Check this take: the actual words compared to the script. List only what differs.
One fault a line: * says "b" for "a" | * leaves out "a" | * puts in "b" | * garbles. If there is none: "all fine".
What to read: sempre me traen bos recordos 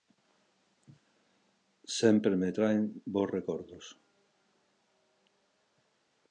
all fine